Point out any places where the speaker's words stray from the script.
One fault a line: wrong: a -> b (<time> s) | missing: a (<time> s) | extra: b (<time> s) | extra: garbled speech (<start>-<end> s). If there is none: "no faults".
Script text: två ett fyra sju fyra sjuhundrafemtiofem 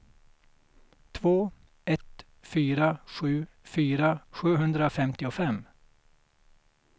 no faults